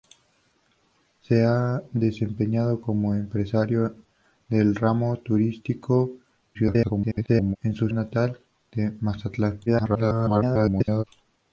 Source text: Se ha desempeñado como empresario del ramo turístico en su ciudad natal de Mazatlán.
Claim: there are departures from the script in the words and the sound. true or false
true